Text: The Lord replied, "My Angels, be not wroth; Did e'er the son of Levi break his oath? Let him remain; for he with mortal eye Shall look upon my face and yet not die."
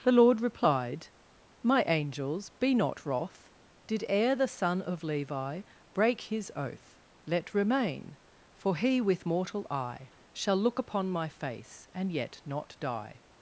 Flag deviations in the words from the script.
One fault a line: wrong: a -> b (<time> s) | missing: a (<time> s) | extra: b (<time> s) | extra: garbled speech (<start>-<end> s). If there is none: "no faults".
missing: him (7.5 s)